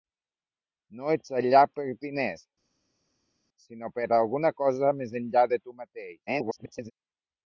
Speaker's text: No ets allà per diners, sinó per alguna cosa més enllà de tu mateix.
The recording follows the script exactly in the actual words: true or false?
false